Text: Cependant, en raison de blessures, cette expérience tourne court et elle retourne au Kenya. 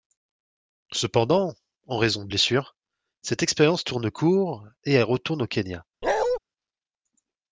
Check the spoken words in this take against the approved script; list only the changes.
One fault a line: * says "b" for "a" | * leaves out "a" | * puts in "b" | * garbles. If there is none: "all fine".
all fine